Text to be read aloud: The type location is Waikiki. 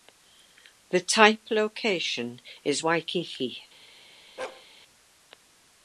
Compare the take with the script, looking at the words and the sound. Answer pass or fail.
fail